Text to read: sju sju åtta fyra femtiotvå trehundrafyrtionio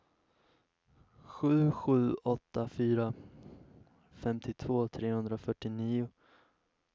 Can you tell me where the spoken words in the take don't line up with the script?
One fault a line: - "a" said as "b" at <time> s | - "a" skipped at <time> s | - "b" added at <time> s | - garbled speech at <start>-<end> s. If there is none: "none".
none